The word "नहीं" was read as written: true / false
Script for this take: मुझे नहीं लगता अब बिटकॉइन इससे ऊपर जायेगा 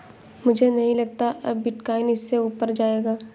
true